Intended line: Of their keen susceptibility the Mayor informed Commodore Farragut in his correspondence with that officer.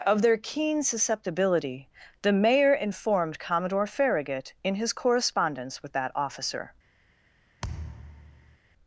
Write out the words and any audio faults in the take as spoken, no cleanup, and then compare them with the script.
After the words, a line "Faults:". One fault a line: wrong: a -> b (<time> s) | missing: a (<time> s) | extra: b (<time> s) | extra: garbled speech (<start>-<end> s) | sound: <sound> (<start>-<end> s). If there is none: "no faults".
Of their keen susceptibility the Mayor informed Commodore Farragut in his correspondence with that officer.
Faults:
sound: thud (7.6-8.6 s)